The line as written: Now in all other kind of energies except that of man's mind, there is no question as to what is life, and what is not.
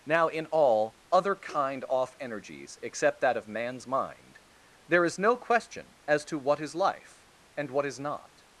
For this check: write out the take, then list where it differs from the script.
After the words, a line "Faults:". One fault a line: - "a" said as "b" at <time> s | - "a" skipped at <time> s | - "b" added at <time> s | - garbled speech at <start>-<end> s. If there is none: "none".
Now in all other kind off energies except that of man's mind, there is no question as to what is life, and what is not.
Faults:
- "of" said as "off" at 1.9 s